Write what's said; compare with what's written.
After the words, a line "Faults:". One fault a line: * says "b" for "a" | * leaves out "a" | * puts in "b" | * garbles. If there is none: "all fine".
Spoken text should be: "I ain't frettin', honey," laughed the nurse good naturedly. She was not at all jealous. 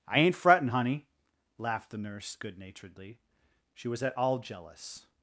"I ain't frettin', honey," laughed the nurse good naturedly. She was at all jealous.
Faults:
* leaves out "not"